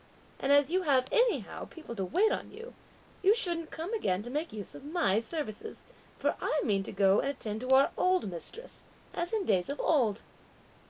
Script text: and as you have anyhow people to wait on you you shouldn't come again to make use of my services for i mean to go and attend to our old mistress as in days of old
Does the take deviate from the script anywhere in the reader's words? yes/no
no